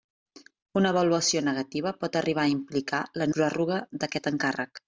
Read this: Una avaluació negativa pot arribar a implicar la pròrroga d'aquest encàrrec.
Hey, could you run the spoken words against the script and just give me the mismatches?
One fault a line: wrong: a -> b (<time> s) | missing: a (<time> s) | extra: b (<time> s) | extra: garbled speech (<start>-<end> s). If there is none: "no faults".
no faults